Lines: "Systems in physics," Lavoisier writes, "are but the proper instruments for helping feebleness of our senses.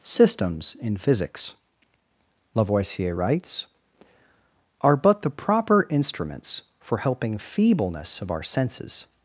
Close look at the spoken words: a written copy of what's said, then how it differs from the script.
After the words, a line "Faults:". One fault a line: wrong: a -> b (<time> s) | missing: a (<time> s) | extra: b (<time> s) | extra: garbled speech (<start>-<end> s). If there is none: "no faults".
"Systems in physics," Lavoisier writes, "are but the proper instruments for helping feebleness of our senses.
Faults:
no faults